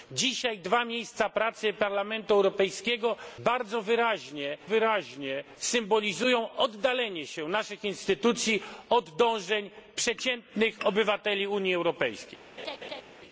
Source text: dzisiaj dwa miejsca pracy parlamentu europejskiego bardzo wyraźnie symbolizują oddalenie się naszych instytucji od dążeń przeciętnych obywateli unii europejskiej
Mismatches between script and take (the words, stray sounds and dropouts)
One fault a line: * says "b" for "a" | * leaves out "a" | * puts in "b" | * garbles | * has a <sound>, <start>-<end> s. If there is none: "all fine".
* puts in "wyraźnie"
* has a laugh, 12.6-13.0 s